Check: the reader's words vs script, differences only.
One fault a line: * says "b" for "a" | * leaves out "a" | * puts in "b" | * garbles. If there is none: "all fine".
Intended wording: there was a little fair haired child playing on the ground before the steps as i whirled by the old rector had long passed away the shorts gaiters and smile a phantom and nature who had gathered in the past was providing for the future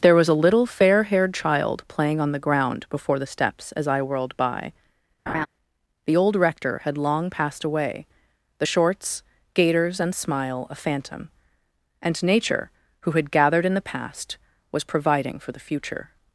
all fine